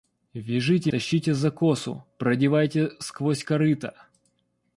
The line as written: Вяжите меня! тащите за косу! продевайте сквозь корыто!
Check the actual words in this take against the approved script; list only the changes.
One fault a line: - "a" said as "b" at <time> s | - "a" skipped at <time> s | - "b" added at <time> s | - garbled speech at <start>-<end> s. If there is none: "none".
- "меня" skipped at 0.9 s